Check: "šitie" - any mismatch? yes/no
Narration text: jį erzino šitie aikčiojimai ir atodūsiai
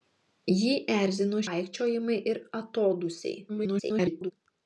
yes